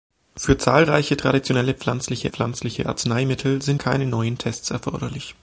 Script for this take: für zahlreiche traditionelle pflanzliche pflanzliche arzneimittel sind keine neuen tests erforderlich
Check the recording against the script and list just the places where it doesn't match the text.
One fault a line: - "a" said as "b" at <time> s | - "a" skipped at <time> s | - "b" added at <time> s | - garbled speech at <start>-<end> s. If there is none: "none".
none